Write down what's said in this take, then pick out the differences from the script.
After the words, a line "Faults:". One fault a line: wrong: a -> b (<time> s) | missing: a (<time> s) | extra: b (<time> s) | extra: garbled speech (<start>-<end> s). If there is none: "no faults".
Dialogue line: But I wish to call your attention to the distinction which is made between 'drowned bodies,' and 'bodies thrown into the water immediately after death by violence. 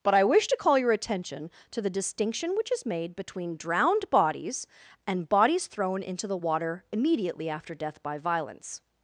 But I wish to call your attention to the distinction which is made between 'drowned bodies,' and 'bodies thrown into the water immediately after death by violence.
Faults:
no faults